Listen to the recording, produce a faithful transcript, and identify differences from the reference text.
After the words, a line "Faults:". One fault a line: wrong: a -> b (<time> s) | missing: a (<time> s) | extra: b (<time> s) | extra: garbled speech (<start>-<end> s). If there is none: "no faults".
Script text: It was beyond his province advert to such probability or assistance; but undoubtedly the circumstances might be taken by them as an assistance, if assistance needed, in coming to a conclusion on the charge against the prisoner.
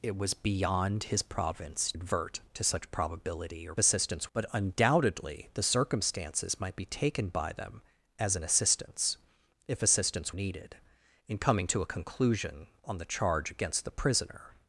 It was beyond his province advert to such probability or assistance; but undoubtedly the circumstances might be taken by them as an assistance, if assistance needed, in coming to a conclusion on the charge against the prisoner.
Faults:
no faults